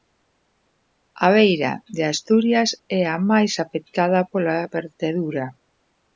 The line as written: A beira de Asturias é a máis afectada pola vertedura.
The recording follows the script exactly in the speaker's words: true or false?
true